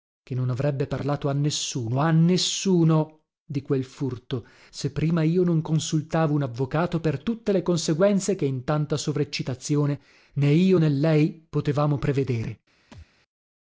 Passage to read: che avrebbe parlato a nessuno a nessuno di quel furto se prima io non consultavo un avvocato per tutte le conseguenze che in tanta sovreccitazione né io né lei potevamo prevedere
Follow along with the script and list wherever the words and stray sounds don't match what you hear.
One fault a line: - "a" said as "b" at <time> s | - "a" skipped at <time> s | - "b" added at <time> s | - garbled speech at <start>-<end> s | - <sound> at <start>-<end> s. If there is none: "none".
- "non" added at 0.3 s
- thud at 12.9-13.1 s